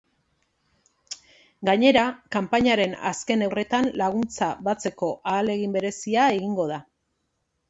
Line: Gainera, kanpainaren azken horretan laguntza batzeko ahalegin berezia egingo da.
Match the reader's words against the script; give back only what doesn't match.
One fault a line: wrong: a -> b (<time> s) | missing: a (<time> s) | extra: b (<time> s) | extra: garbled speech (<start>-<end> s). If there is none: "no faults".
no faults